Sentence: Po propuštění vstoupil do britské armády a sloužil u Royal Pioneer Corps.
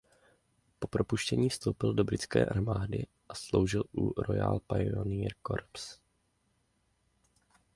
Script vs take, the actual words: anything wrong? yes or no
no